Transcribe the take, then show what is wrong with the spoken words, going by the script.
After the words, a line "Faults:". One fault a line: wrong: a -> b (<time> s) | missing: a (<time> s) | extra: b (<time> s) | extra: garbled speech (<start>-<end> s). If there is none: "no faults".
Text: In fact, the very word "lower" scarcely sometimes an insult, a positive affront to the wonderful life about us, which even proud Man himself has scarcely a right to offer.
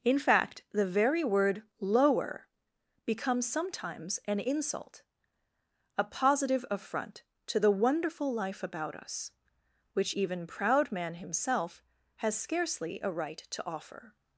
In fact, the very word "lower" becomes sometimes an insult, a positive affront to the wonderful life about us, which even proud Man himself has scarcely a right to offer.
Faults:
wrong: scarcely -> becomes (3.0 s)